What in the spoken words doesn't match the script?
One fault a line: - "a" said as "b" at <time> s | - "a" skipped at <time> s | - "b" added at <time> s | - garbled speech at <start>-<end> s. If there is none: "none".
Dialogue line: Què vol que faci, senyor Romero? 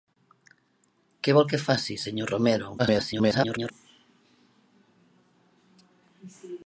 - garbled speech at 2.8-3.7 s